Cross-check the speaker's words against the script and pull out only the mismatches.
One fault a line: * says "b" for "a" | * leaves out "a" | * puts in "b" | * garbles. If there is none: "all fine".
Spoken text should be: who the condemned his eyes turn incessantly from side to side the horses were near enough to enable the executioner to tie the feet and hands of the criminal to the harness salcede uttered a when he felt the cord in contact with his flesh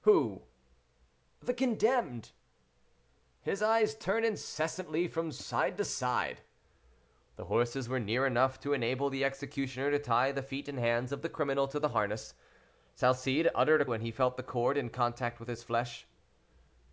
all fine